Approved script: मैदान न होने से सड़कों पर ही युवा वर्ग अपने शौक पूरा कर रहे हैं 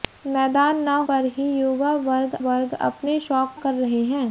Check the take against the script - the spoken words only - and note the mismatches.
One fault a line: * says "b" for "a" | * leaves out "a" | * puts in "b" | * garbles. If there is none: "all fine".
* leaves out "होने से सड़कों"
* puts in "वर्ग"
* leaves out "पूरा"